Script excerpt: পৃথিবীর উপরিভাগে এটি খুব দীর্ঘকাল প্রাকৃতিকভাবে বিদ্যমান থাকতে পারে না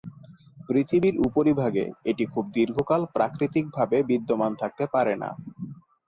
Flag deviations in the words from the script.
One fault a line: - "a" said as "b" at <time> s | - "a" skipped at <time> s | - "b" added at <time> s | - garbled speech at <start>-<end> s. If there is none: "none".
none